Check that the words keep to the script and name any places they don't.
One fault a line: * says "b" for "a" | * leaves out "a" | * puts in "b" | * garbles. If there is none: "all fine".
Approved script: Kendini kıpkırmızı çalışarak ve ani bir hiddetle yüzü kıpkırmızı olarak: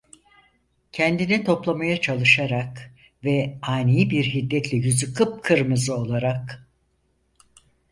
* says "toplamaya" for "kıpkırmızı"